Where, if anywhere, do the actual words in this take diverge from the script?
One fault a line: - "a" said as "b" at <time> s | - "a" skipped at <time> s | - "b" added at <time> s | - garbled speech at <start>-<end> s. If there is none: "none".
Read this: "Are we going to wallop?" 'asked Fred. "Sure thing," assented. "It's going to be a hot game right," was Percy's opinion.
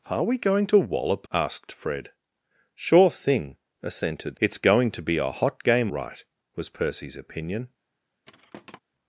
none